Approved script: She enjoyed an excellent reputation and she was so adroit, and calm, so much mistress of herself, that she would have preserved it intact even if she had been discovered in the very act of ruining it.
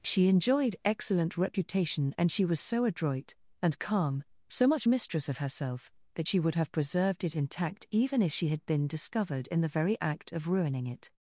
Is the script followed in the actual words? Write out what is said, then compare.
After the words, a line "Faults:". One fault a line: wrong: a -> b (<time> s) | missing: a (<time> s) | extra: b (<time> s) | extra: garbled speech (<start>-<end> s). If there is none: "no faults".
She enjoyed excellent reputation and she was so adroit, and calm, so much mistress of herself, that she would have preserved it intact even if she had been discovered in the very act of ruining it.
Faults:
missing: an (0.8 s)